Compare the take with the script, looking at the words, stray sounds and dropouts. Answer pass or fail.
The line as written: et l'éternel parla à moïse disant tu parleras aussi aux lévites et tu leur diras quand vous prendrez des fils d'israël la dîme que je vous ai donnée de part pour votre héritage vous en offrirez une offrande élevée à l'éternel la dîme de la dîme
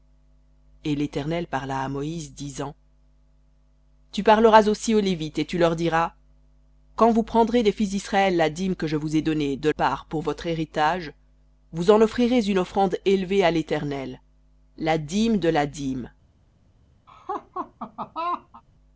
fail